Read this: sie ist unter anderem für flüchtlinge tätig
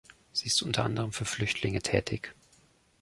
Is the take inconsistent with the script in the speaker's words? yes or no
no